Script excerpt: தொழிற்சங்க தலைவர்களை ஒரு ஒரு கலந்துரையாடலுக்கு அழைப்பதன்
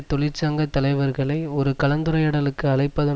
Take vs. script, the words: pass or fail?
fail